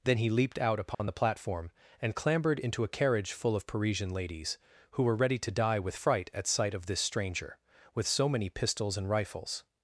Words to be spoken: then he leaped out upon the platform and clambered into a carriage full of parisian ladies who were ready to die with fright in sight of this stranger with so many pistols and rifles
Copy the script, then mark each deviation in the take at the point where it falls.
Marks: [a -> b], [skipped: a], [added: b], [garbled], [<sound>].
then he leaped out upon [dropout] the platform and clambered into a carriage full of parisian ladies who were ready to die with fright [in -> at] sight of this stranger with so many pistols and rifles